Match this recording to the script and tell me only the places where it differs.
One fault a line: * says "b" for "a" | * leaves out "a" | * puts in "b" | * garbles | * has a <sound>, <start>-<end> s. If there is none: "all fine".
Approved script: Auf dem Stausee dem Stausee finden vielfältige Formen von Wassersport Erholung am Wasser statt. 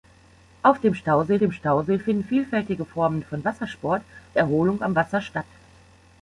all fine